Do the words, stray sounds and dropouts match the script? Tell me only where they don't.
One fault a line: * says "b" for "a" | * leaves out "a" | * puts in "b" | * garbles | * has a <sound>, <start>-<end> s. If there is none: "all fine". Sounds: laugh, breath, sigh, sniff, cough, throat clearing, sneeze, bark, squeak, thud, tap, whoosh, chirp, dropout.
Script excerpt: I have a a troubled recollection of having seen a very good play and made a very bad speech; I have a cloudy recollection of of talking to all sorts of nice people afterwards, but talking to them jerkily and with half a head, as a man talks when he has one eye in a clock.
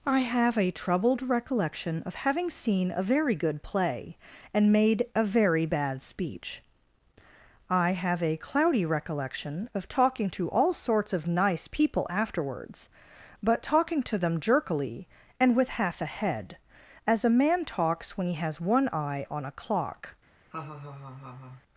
* leaves out "a"
* leaves out "of"
* says "on" for "in"
* has a laugh, 20.5-21.6 s